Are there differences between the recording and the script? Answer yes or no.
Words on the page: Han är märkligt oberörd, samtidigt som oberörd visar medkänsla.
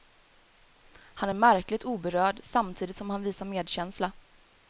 yes